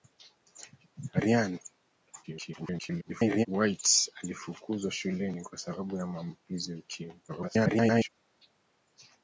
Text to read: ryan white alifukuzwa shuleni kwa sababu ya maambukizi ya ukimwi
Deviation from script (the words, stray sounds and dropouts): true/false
true